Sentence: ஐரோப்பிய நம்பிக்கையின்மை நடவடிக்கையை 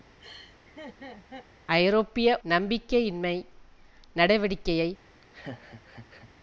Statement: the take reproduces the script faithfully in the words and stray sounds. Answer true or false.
false